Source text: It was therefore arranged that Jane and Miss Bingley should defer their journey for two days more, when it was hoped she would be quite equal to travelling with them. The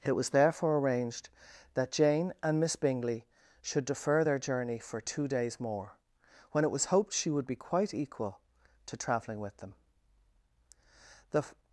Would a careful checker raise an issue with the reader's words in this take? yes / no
no